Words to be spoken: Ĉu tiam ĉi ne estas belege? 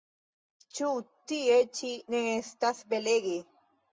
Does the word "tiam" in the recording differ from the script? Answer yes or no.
yes